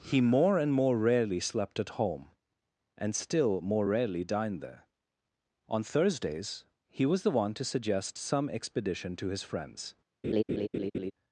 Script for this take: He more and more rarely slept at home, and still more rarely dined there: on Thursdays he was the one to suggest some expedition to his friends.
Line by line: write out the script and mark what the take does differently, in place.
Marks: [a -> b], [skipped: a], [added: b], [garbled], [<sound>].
He more and more rarely slept at home, and still more rarely dined there: on Thursdays he was the one to suggest some expedition to his friends. [laugh]